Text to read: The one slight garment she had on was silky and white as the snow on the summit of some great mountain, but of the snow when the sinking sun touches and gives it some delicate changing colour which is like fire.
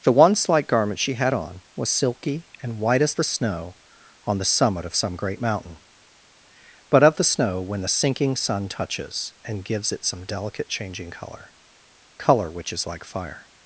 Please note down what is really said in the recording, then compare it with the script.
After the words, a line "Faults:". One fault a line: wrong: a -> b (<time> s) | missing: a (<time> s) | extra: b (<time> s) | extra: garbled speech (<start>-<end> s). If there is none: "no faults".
The one slight garment she had on was silky and white as the snow on the summit of some great mountain, but of the snow when the sinking sun touches and gives it some delicate changing colour colour which is like fire.
Faults:
extra: colour (12.2 s)